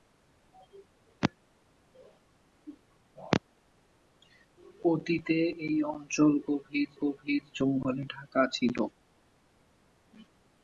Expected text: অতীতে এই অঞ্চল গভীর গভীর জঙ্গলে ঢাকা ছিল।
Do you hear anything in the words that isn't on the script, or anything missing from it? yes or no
no